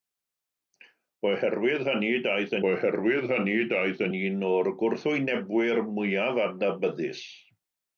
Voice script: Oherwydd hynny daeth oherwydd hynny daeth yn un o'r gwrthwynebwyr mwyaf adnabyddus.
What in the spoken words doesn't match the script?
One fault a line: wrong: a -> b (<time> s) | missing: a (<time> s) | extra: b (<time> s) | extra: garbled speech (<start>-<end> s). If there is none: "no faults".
no faults